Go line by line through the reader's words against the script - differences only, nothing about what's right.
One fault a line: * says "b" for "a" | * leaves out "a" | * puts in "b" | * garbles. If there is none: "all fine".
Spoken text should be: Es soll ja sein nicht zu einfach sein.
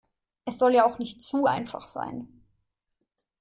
* says "auch" for "sein"